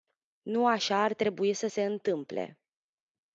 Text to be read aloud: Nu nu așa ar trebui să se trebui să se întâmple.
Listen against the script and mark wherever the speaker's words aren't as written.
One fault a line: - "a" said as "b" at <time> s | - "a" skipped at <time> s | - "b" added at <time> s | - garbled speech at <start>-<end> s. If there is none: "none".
- "nu" skipped at 0.7 s
- "trebui să se" skipped at 1.8 s